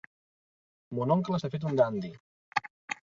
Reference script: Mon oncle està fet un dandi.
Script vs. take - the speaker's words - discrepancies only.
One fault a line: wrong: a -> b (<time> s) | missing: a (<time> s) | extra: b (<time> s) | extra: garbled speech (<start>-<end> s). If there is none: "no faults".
no faults